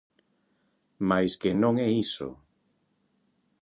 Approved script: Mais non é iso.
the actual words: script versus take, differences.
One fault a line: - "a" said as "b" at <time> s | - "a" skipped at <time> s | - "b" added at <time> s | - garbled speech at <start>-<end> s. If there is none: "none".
- "que" added at 1.4 s